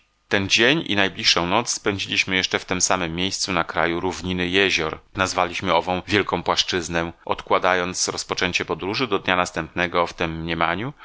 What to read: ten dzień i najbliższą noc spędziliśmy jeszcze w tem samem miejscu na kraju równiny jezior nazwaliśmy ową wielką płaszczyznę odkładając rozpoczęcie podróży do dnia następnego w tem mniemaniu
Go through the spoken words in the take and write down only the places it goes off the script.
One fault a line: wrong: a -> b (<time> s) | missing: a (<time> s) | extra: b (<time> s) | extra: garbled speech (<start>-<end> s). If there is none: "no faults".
no faults